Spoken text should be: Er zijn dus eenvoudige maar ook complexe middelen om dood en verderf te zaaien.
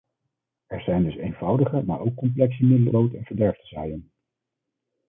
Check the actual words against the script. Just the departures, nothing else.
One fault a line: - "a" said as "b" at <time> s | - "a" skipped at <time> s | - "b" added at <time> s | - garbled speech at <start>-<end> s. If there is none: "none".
- "om" skipped at 2.9 s